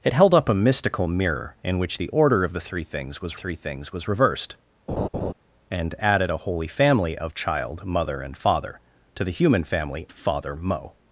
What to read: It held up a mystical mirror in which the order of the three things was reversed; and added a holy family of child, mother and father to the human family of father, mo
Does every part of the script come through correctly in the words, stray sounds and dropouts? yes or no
no